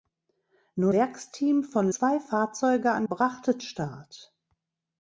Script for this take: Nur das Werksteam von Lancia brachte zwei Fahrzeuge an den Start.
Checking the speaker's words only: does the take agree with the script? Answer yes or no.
no